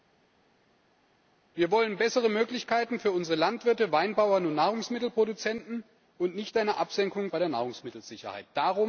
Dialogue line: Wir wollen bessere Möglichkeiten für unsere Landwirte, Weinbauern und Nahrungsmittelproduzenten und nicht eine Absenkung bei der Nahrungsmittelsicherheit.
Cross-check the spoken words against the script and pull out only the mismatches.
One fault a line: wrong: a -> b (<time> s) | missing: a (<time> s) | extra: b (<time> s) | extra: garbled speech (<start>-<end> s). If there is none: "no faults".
no faults